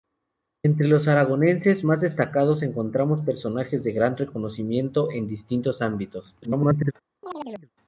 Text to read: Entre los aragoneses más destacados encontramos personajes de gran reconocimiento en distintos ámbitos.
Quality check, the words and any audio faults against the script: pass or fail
fail